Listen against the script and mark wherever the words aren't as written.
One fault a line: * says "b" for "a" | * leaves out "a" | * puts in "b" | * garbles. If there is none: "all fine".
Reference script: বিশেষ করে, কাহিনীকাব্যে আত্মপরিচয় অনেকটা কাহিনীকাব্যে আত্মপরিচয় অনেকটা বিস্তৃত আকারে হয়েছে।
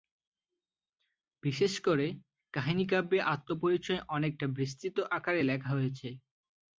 * leaves out "কাহিনীকাব্যে আত্মপরিচয় অনেকটা"
* puts in "লেখা"